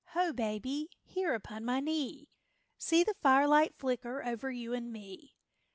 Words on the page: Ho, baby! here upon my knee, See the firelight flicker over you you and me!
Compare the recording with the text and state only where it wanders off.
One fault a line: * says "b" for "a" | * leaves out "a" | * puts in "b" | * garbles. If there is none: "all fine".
* leaves out "you"